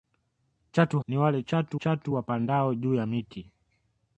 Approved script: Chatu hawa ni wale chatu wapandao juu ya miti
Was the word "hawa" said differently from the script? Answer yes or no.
yes